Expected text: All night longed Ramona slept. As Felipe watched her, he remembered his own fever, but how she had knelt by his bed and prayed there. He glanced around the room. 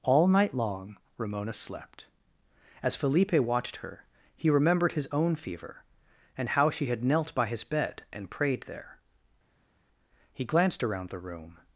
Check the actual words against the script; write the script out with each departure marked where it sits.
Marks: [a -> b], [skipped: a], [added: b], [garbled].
All night [longed -> long] Ramona slept. As Felipe watched her, he remembered his own fever, [but -> and] how she had knelt by his bed and prayed there. He glanced around the room.